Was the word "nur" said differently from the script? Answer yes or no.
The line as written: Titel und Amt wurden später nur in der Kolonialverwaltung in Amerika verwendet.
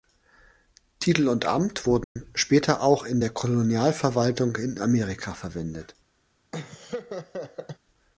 yes